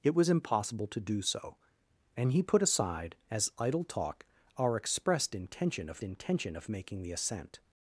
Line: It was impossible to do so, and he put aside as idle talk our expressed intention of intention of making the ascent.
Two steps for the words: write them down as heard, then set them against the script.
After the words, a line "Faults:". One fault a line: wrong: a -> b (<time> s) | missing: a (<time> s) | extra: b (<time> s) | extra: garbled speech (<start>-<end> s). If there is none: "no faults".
It was impossible to do so, and he put aside as idle talk our expressed intention of intention of making the ascent.
Faults:
no faults